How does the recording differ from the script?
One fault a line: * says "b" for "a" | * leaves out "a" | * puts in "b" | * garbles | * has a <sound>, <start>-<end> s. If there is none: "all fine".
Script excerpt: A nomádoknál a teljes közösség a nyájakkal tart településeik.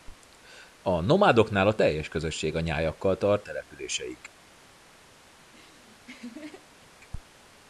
* has a laugh, 5.4-6.9 s